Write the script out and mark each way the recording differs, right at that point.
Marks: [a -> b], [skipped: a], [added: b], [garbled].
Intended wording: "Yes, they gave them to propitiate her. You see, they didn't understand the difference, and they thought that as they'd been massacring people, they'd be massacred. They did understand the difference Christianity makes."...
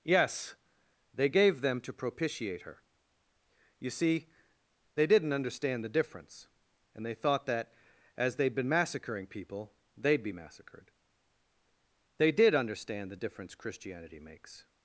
"Yes, they gave them to propitiate her. You see, they didn't understand the difference, and they thought that as they'd been massacring people, they'd be massacred. They did understand the difference Christianity makes."...